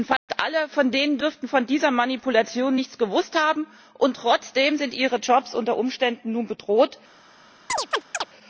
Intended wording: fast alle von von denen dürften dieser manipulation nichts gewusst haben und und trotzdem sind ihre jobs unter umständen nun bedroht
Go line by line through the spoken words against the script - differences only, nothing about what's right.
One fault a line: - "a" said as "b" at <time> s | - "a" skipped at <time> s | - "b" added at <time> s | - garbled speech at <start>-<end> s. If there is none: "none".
- "von" skipped at 0.9 s
- "von" added at 1.5 s
- "und" skipped at 4.2 s